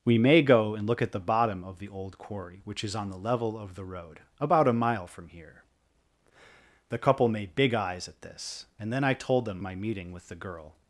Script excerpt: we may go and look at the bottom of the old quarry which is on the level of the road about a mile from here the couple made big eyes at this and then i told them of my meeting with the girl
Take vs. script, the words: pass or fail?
fail